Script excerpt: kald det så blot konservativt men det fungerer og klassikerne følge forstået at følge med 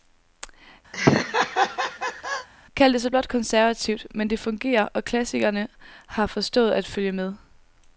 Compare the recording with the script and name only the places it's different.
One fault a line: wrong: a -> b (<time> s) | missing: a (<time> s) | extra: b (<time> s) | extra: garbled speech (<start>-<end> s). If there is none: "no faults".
wrong: følge -> har (6.1 s)